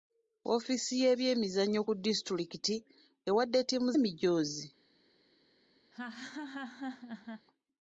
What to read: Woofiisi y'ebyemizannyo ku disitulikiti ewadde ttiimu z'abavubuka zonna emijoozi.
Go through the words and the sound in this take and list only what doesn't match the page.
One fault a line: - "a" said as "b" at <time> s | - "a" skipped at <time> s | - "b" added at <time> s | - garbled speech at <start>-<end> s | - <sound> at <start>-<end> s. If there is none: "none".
- "z'abavubuka zonna" skipped at 3.9 s
- laugh at 5.9-7.5 s